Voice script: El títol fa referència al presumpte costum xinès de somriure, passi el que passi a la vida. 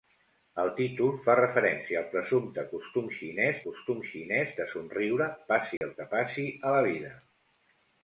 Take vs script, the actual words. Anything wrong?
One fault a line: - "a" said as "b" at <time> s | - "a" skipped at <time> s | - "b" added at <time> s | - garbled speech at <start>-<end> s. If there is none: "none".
- "costum xinès" added at 3.6 s